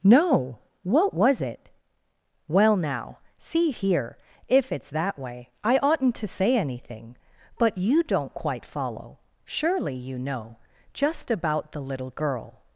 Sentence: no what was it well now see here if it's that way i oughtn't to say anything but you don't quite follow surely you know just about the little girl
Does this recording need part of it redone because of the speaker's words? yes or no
no